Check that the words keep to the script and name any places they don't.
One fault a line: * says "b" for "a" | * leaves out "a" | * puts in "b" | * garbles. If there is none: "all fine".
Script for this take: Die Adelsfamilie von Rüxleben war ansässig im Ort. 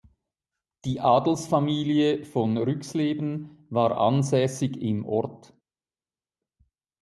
all fine